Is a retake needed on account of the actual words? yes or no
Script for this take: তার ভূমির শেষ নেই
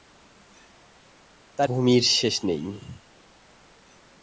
no